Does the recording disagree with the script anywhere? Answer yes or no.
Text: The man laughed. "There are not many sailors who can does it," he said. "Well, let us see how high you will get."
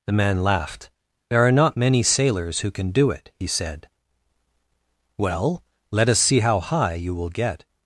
yes